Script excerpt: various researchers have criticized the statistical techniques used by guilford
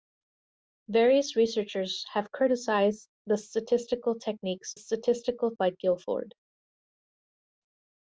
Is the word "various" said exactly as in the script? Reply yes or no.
yes